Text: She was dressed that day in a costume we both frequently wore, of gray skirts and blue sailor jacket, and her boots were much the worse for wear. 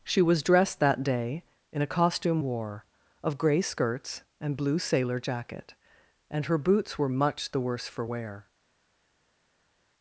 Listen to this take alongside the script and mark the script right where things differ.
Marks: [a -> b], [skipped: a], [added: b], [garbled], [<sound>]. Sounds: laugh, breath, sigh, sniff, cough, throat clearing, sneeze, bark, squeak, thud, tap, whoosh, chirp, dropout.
She was dressed that day in a costume [skipped: we both frequently] wore, of gray skirts and blue sailor jacket, and her boots were much the worse for wear.